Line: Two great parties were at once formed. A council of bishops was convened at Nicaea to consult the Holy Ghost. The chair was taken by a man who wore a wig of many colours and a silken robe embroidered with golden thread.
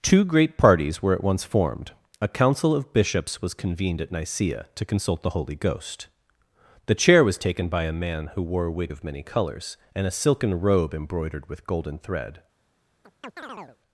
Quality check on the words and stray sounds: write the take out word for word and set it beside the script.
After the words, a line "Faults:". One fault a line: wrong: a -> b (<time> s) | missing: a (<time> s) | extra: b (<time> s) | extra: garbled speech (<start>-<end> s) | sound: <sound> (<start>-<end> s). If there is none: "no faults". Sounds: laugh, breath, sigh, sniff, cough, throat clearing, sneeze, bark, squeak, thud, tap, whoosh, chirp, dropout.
Two great parties were at once formed. A council of bishops was convened at Nicaea to consult the Holy Ghost. The chair was taken by a man who wore a wig of many colours and a silken robe embroidered with golden thread.
Faults:
sound: chirp (13.0-13.8 s)